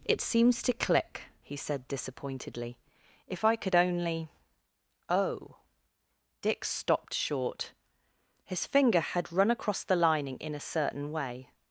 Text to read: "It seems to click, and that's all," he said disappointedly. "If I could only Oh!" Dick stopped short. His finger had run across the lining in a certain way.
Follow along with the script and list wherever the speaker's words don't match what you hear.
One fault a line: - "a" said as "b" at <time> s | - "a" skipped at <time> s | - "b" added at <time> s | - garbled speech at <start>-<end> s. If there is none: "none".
- "and that's all" skipped at 1.2 s